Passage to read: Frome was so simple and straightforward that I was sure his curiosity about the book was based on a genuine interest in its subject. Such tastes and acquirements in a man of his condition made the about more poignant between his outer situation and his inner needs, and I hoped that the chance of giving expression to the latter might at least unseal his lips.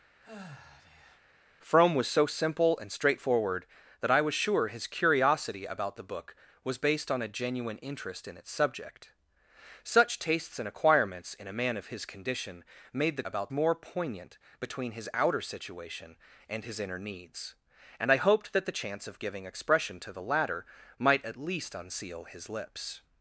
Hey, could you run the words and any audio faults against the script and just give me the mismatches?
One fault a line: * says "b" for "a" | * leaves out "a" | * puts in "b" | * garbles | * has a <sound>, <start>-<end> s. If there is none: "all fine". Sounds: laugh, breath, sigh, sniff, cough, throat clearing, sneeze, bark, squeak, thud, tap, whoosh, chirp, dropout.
* has a sigh, 0.2-1.2 s